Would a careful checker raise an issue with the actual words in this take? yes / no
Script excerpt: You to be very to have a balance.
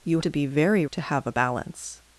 no